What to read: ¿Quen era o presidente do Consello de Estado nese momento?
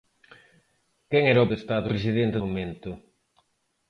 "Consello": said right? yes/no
no